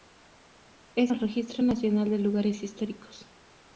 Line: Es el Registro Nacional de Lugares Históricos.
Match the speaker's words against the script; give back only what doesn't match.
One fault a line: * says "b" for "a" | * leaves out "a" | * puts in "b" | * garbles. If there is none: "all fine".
all fine